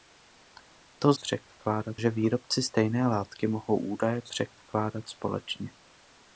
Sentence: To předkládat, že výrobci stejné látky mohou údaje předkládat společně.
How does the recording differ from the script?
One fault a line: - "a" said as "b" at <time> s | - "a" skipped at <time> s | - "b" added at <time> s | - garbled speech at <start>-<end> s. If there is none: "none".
none